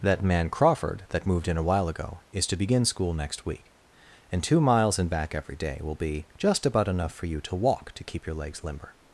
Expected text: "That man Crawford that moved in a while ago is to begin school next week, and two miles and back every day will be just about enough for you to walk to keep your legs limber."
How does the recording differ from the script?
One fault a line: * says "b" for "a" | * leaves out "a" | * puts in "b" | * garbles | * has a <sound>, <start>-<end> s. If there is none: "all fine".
all fine